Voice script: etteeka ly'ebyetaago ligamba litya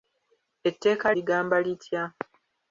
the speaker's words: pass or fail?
fail